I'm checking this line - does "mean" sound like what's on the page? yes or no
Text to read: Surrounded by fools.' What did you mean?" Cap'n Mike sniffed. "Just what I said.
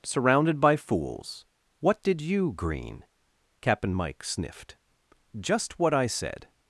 no